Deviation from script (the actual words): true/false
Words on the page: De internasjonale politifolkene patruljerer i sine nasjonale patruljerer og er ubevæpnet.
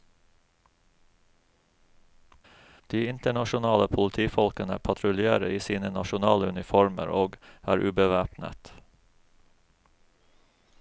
true